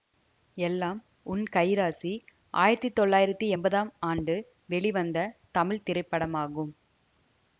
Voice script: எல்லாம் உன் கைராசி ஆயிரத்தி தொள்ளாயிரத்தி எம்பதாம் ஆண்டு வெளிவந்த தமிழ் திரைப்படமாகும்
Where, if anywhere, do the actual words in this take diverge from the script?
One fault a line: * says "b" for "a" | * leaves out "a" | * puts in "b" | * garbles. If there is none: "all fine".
all fine